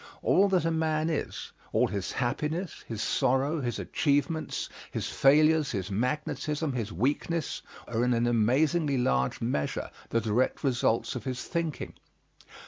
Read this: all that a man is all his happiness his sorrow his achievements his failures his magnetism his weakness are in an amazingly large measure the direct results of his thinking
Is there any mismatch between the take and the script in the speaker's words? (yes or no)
no